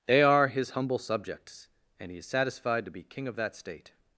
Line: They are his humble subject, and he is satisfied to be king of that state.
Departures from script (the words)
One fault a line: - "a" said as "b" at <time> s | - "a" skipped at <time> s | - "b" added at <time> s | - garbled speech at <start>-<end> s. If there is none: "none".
- "subject" said as "subjects" at 1.0 s